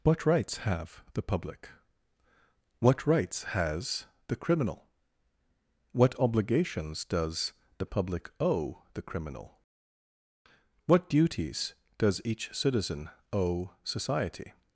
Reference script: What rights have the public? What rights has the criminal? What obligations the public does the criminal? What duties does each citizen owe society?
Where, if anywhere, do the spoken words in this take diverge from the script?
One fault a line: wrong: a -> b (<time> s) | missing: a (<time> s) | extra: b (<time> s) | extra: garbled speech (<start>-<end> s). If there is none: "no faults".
extra: does (7.0 s)
wrong: does -> owe (8.4 s)